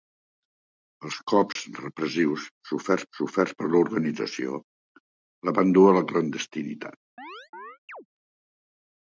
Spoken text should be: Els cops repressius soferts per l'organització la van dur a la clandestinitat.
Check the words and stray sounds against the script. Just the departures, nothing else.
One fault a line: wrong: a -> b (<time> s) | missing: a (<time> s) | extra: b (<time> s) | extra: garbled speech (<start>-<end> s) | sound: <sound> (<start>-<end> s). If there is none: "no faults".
sound: dropout (1.5-1.6 s)
extra: soferts (3.2 s)
sound: chirp (7.2-8.1 s)